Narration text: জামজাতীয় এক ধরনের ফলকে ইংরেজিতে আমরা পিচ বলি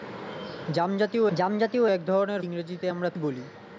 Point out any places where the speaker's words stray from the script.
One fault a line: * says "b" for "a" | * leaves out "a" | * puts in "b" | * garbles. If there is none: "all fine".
* puts in "জামজাতীয়"
* leaves out "ফলকে"
* leaves out "পিচ"